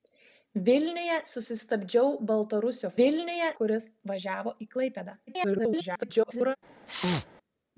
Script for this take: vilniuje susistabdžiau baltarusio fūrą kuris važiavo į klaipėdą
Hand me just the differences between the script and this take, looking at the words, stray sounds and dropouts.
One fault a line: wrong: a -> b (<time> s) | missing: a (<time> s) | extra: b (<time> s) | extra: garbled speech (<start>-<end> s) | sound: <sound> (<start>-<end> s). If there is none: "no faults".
wrong: fūrą -> vilniuje (3.0 s)
extra: garbled speech (5.3-6.6 s)
sound: sneeze (6.9-7.3 s)